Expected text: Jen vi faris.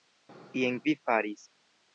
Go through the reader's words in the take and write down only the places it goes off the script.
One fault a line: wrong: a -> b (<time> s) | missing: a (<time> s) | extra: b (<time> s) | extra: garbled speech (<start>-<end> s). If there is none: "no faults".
no faults